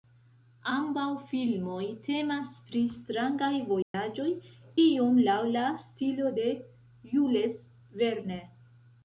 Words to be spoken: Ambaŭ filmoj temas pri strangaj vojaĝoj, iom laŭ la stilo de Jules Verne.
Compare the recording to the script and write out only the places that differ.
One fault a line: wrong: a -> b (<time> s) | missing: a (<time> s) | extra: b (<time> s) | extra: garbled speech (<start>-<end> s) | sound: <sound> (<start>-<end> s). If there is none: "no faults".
sound: dropout (3.8-3.9 s)